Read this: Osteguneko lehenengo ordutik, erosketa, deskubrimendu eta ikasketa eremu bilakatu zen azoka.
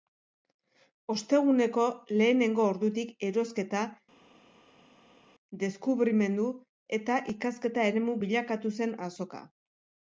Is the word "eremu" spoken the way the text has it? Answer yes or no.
yes